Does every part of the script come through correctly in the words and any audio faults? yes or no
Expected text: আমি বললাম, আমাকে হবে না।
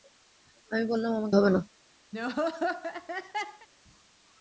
no